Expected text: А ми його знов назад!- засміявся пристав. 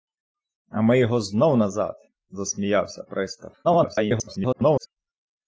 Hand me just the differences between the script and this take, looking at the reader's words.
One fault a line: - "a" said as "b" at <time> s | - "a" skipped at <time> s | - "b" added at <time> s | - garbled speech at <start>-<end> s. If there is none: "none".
- garbled speech at 3.6-4.9 s